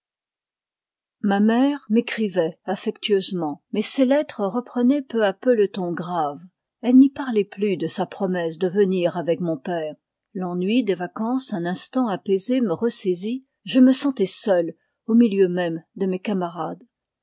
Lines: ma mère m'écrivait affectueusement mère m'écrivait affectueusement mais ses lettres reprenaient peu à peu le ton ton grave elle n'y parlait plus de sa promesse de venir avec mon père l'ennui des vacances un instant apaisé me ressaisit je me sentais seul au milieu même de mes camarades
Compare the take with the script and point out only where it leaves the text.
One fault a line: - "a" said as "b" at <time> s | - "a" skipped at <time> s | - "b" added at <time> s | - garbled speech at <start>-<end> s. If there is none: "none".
- "mère m'écrivait affectueusement" skipped at 3.6 s
- "ton" skipped at 5.9 s